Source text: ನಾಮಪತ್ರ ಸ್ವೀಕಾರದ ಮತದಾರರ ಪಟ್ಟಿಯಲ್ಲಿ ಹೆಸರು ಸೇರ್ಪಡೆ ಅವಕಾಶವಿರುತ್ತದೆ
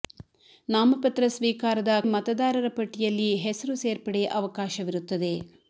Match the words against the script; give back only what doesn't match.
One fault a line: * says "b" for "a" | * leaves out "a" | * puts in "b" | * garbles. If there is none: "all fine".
all fine